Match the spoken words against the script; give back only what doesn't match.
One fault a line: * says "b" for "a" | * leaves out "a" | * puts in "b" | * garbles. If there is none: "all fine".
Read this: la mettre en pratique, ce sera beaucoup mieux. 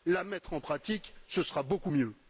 all fine